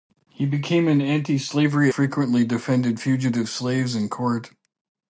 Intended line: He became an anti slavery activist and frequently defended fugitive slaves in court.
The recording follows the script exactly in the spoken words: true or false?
false